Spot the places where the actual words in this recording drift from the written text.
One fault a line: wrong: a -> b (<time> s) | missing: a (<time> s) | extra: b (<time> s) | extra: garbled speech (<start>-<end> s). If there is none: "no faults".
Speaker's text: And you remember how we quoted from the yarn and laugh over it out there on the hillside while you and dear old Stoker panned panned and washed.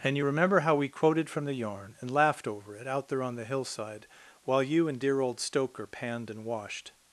wrong: laugh -> laughed (2.1 s)
missing: panned (6.3 s)